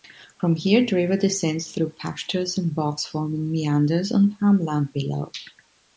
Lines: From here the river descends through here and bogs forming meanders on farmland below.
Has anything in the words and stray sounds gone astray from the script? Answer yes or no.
yes